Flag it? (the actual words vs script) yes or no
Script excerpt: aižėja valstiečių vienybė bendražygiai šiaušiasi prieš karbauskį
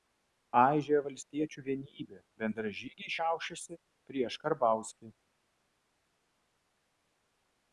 no